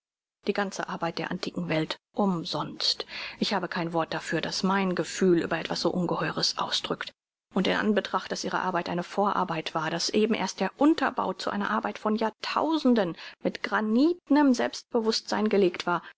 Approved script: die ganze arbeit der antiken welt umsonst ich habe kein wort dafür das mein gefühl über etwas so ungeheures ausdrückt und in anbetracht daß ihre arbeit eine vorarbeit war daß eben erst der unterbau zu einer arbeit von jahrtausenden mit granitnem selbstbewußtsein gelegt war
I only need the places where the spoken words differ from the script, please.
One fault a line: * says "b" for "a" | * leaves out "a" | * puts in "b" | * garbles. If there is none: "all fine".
all fine